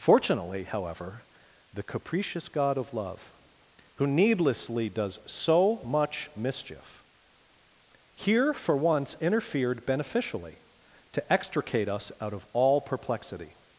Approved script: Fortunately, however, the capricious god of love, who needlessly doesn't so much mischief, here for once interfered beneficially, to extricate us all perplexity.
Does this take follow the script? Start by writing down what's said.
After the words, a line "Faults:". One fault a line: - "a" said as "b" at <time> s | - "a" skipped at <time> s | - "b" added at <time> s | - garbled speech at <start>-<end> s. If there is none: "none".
Fortunately, however, the capricious god of love, who needlessly does so much mischief, here for once interfered beneficially, to extricate us out of all perplexity.
Faults:
- "doesn't" said as "does" at 4.9 s
- "out of" added at 12.2 s